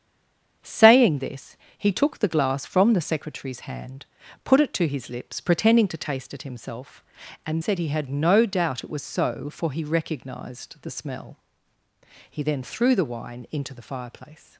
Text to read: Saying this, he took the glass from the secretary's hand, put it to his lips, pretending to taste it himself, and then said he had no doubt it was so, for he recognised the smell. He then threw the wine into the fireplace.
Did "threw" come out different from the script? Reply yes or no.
no